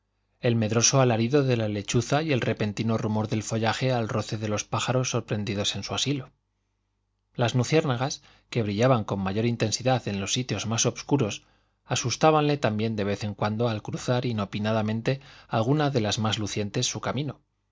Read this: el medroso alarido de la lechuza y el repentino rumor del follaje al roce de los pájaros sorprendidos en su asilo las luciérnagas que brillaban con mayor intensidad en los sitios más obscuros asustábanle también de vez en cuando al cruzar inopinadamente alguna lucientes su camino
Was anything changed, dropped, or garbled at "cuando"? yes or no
no